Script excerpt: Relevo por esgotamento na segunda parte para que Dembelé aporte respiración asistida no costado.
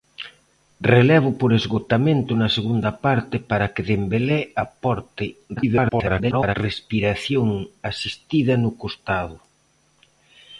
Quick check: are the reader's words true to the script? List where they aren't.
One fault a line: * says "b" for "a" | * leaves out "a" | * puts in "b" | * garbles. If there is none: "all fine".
* garbles